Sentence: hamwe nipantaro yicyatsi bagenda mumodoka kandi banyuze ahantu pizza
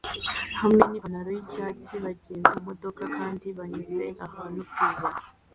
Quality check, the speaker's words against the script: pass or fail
pass